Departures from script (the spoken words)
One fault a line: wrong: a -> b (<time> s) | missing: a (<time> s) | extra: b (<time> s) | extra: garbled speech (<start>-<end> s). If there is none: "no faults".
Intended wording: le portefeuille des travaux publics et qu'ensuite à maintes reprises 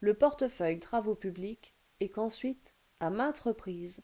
missing: des (0.8 s)